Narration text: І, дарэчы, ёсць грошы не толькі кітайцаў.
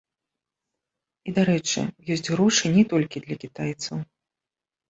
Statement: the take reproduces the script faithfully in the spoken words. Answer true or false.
false